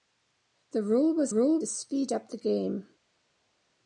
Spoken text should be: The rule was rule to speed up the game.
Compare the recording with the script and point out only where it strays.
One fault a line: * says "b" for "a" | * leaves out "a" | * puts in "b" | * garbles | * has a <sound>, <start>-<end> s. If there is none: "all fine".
all fine